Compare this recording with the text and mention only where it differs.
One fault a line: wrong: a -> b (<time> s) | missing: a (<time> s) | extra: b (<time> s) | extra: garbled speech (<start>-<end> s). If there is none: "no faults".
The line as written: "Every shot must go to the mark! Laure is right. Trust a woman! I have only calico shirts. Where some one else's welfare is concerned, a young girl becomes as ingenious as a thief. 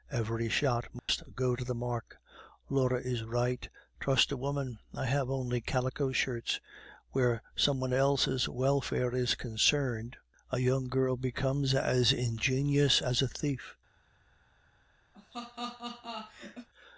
no faults